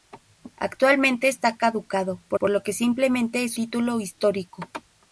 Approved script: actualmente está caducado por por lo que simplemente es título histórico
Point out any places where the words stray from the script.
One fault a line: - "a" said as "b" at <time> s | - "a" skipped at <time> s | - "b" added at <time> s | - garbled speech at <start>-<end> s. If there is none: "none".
none